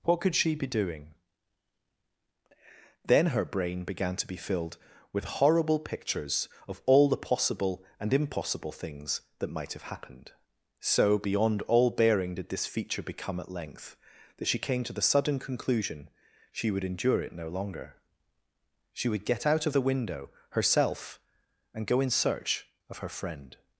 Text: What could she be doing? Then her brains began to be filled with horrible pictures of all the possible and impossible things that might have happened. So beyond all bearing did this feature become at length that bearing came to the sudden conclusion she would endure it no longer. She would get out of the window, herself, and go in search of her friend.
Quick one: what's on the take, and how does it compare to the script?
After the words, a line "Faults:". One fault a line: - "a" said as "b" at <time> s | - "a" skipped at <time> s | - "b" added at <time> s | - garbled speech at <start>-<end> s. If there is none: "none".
What could she be doing? Then her brain began to be filled with horrible pictures of all the possible and impossible things that might have happened. So beyond all bearing did this feature become at length that she came to the sudden conclusion she would endure it no longer. She would get out of the window, herself, and go in search of her friend.
Faults:
- "brains" said as "brain" at 3.5 s
- "bearing" said as "she" at 14.5 s